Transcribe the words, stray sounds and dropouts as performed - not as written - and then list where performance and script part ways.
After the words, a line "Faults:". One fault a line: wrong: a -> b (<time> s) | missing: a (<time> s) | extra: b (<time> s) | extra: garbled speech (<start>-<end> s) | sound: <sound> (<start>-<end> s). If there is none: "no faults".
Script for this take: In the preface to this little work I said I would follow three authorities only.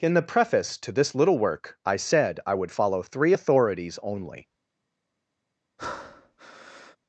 In the preface to this little work I said I would follow three authorities only.
Faults:
sound: breath (5.8-7.0 s)